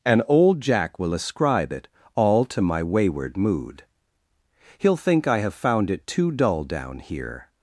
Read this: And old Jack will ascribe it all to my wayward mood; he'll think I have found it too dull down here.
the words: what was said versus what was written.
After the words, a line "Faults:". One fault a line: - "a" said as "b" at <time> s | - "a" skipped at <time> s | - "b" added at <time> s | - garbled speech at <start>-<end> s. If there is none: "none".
And old Jack will ascribe it all to my wayward mood; he'll think I have found it too dull down here.
Faults:
none